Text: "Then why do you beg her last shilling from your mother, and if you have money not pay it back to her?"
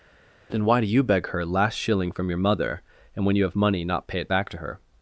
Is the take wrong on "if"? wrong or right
wrong